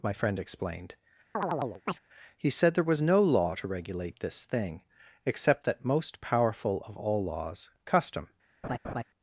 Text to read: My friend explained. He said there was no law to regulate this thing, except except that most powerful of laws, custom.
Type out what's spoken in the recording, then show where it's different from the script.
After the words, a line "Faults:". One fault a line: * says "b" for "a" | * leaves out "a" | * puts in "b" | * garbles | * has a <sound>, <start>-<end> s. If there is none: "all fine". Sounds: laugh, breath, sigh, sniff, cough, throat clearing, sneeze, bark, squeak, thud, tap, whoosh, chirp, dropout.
My friend explained. He said there was no law to regulate this thing, except that most powerful of all laws, custom.
Faults:
* has a chirp, 1.3-2.0 s
* leaves out "except"
* puts in "all"
* has a laugh, 8.6-9.0 s